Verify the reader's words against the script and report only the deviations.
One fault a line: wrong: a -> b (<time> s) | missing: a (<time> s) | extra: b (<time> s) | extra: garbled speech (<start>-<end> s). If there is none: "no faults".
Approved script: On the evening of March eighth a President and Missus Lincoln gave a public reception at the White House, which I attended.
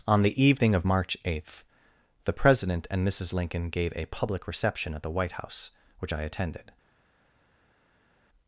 wrong: a -> the (2.2 s)